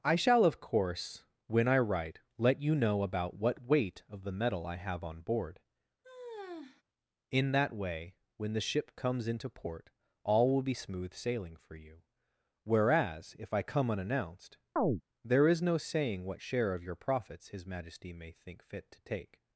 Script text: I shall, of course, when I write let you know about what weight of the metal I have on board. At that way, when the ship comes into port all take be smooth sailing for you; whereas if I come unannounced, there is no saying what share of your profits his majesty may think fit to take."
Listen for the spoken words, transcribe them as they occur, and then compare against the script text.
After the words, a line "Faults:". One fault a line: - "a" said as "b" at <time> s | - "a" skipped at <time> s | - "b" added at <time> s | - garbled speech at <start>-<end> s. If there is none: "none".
I shall, of course, when I write let you know about what weight of the metal I have on board. In that way, when the ship comes into port all will be smooth sailing for you; whereas if I come unannounced, there is no saying what share of your profits his majesty may think fit to take."
Faults:
- "At" said as "In" at 7.3 s
- "take" said as "will" at 10.5 s